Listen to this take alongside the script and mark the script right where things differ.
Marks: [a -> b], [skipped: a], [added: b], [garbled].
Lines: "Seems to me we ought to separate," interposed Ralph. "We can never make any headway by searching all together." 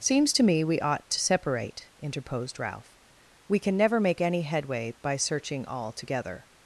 "Seems to me we ought to separate," interposed Ralph. "We can never make any headway by searching all together."